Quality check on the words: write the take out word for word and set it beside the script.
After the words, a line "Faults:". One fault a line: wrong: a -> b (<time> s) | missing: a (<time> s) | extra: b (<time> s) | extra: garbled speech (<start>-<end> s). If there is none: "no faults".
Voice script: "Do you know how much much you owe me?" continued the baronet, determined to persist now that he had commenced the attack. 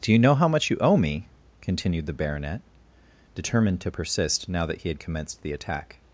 "Do you know how much you owe me?" continued the baronet, determined to persist now that he had commenced the attack.
Faults:
missing: much (0.7 s)